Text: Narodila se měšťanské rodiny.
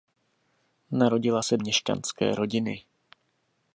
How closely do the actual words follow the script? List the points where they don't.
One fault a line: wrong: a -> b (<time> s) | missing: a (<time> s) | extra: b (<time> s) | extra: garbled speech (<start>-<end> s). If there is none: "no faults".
no faults